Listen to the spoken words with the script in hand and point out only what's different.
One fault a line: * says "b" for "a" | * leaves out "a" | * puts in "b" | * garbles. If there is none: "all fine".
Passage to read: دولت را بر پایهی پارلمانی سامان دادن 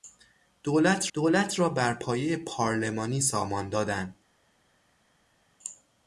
* puts in "دولت"